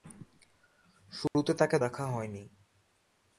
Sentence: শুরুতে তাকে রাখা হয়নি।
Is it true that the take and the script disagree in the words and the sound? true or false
true